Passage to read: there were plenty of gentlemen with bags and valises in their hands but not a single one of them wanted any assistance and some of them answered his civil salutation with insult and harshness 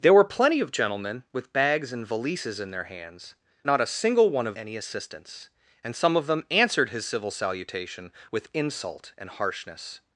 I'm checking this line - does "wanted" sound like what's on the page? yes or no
no